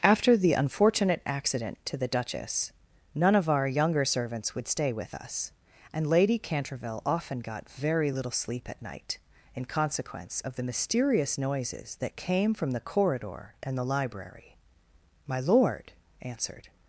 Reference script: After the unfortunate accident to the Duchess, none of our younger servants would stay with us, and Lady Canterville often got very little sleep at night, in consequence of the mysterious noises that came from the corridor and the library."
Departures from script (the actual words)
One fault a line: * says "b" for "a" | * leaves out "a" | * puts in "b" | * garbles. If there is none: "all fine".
* puts in "My Lord answered"